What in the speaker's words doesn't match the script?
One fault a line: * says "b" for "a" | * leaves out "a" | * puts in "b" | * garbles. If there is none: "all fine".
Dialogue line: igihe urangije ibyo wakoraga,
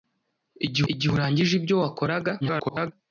* puts in "igihe"
* garbles